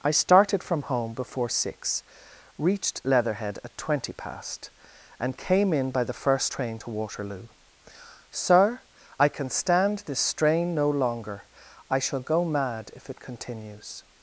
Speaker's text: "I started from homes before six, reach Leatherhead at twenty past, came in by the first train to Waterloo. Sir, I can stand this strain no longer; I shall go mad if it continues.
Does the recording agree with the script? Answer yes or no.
no